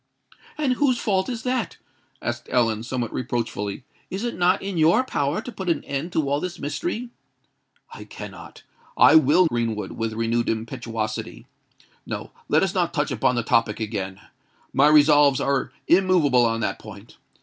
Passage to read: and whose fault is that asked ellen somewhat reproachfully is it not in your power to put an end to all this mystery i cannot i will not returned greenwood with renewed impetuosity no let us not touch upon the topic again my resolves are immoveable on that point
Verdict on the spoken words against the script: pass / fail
fail